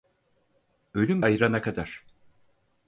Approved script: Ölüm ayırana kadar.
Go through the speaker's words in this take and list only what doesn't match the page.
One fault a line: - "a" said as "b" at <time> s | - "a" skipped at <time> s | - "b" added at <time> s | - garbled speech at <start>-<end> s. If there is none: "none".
none